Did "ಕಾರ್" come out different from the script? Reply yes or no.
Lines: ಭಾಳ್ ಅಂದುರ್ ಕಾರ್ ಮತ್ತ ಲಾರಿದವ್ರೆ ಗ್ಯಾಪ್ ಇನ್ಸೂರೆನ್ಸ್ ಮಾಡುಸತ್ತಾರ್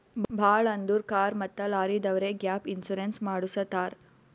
no